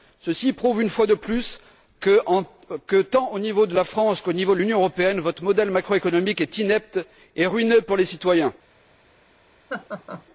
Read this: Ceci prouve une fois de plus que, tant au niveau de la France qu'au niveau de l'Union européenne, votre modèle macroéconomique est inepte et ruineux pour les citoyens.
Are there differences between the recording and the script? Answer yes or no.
no